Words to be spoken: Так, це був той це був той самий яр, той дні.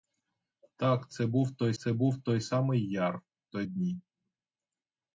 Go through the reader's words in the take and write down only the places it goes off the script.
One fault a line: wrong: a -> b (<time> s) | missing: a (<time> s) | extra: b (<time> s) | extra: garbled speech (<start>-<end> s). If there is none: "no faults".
no faults